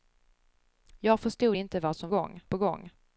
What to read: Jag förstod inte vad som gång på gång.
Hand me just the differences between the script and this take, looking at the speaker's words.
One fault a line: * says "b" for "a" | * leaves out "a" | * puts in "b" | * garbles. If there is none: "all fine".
all fine